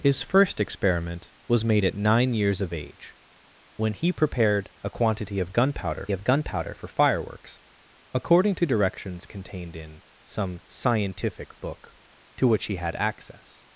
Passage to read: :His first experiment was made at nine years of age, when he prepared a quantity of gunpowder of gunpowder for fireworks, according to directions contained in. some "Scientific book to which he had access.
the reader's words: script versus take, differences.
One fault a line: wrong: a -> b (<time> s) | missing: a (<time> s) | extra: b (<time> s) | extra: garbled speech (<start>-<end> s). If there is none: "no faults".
no faults